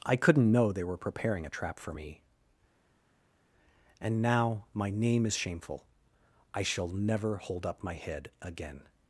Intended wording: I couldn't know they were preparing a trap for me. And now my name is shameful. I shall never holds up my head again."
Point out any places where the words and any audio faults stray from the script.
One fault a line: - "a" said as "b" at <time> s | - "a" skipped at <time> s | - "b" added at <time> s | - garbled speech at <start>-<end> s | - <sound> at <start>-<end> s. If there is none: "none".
- "holds" said as "hold" at 7.4 s